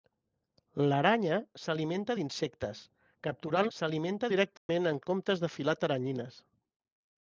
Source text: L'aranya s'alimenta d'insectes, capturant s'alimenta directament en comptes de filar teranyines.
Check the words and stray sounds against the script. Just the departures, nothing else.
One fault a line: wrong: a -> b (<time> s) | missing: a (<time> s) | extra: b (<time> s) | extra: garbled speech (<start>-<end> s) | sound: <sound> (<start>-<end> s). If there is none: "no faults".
sound: dropout (4.6-4.7 s)